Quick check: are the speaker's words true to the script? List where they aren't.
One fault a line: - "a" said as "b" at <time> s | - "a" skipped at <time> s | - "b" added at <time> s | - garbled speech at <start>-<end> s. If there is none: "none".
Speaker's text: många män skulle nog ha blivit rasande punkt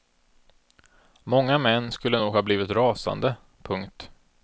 none